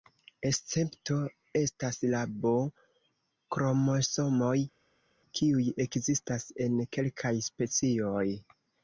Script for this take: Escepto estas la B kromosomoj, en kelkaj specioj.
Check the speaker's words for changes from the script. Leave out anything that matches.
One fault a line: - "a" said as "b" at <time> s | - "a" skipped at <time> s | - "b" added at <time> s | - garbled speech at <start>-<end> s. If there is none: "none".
- "kiuj ekzistas" added at 5.4 s